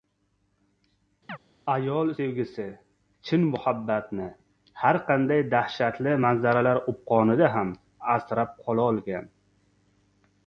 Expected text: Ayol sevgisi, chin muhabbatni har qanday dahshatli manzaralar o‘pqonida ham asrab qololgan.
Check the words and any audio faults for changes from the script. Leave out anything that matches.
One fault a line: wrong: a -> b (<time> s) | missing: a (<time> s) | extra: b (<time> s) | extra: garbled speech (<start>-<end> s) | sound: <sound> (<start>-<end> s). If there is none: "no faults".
sound: chirp (1.3-1.4 s)